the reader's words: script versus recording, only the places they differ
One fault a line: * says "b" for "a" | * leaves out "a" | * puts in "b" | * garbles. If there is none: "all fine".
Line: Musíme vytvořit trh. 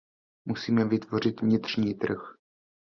* puts in "vnitřní"